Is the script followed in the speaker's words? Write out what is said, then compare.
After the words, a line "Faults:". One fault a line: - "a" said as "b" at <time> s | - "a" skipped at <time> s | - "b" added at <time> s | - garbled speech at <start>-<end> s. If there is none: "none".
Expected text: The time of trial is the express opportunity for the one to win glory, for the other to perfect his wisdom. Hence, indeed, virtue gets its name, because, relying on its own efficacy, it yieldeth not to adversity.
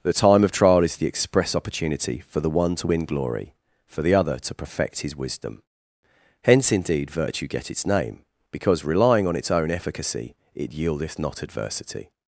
The time of trial is the express opportunity for the one to win glory, for the other to perfect his wisdom. Hence, indeed, virtue get its name, because, relying on its own efficacy, it yieldeth not adversity.
Faults:
- "gets" said as "get" at 7.5 s
- "to" skipped at 11.4 s